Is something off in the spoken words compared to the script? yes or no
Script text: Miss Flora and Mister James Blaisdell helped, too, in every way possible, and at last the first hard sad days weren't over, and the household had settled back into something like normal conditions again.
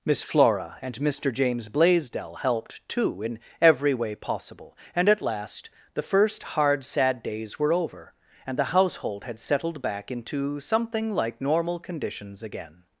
yes